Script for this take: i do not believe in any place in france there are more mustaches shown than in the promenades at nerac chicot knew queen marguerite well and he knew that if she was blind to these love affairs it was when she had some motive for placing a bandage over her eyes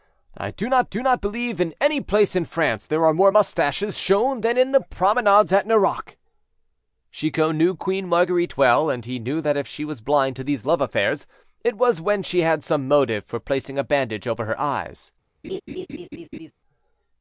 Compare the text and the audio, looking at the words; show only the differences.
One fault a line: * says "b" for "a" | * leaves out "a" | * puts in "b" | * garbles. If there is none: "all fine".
* puts in "do not"